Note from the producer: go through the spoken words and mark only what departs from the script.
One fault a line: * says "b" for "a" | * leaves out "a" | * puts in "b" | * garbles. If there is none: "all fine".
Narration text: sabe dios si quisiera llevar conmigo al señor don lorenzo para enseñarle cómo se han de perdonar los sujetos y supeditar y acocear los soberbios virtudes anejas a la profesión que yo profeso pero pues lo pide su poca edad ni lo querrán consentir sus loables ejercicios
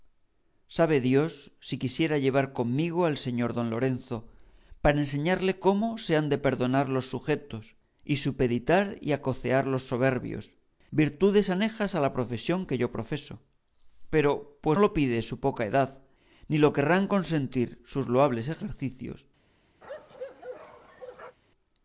all fine